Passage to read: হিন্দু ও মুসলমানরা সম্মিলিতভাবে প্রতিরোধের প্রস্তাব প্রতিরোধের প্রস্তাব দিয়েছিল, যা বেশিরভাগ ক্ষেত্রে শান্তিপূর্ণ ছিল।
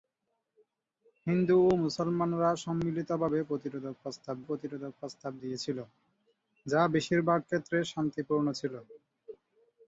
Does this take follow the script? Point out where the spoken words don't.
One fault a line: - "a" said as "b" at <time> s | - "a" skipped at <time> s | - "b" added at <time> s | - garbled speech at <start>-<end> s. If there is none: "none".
none